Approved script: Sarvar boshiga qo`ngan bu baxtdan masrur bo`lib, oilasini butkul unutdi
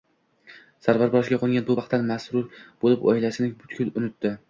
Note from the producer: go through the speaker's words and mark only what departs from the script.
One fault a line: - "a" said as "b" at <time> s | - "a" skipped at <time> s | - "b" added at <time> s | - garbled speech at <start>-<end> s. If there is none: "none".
none